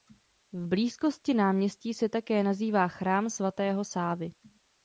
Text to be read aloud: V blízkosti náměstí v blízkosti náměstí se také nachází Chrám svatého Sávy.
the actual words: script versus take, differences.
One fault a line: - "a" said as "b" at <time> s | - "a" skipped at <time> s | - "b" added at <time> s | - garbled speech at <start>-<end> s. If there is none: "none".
- "v blízkosti náměstí" skipped at 1.9 s